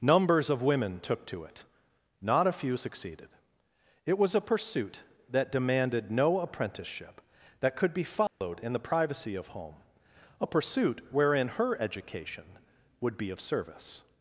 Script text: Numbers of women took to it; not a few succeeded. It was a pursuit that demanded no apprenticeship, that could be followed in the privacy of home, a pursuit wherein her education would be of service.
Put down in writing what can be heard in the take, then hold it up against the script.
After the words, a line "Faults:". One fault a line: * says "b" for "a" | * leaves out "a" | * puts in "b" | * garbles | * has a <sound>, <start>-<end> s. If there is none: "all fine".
Numbers of women took to it; not a few succeeded. It was a pursuit that demanded no apprenticeship, that could be followed in the privacy of home, a pursuit wherein her education would be of service.
Faults:
* has a dropout, 8.3-8.4 s